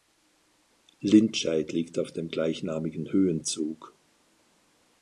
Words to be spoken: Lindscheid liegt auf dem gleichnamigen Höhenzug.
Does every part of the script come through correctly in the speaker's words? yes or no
yes